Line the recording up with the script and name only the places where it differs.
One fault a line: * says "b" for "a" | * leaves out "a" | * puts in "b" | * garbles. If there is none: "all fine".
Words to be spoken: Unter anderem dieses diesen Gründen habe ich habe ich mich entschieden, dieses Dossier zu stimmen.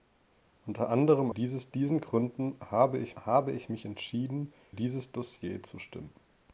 all fine